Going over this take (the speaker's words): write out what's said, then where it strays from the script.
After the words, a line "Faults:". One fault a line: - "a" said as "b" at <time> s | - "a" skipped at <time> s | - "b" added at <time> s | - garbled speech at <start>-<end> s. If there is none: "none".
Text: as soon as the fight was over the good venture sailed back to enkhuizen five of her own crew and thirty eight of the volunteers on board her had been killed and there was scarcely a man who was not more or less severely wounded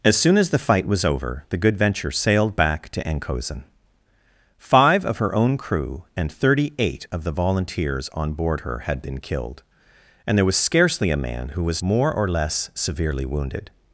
as soon as the fight was over the good venture sailed back to enkhuizen five of her own crew and thirty eight of the volunteers on board her had been killed and there was scarcely a man who was more or less severely wounded
Faults:
- "not" skipped at 11.8 s